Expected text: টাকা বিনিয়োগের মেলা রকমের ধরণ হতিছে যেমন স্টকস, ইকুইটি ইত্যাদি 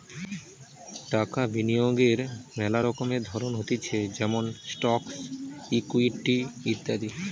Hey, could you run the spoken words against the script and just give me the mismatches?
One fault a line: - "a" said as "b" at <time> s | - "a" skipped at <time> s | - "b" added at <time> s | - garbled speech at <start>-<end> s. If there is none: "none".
none